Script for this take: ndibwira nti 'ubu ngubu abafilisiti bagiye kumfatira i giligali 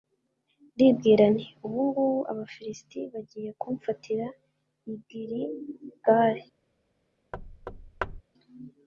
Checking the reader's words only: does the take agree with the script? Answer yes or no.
yes